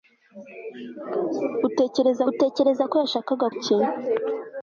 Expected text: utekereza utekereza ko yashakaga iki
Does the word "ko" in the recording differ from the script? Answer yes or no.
no